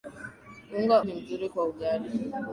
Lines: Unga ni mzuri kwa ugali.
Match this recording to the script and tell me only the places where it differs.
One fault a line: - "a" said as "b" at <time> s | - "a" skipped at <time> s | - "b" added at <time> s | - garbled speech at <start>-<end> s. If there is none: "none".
none